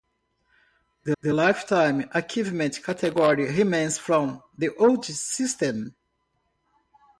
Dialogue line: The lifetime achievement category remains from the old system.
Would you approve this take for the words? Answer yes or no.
no